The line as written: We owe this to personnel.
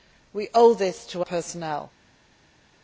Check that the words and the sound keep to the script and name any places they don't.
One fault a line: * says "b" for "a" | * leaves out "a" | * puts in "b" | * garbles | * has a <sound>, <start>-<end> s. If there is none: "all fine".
all fine